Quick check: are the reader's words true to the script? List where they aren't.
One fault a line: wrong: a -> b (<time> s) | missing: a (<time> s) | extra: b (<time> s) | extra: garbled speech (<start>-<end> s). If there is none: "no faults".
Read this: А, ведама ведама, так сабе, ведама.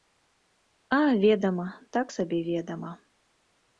missing: ведама (1.7 s)